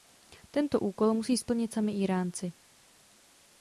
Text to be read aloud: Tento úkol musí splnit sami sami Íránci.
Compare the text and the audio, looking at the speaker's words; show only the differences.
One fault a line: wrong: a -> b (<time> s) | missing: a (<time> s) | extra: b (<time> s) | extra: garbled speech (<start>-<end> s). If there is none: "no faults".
missing: sami (1.9 s)